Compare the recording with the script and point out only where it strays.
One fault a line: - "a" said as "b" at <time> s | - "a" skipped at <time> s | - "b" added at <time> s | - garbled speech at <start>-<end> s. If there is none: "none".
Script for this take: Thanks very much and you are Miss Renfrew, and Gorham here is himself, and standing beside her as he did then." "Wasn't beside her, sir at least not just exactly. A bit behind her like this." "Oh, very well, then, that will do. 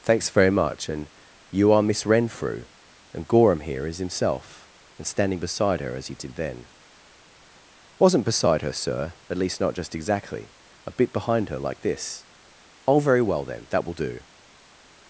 none